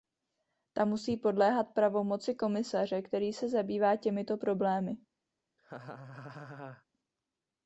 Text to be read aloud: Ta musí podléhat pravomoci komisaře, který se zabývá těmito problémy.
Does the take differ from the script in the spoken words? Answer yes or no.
no